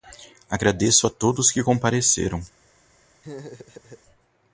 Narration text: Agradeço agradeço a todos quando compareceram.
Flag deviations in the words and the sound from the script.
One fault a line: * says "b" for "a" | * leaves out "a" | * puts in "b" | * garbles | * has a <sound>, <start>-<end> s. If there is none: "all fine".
* leaves out "agradeço"
* says "que" for "quando"
* has a laugh, 3.2-4.0 s